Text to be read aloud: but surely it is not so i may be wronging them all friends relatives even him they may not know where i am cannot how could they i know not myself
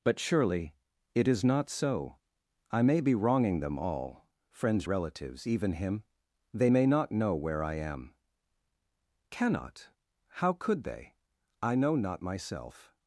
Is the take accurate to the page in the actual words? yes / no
yes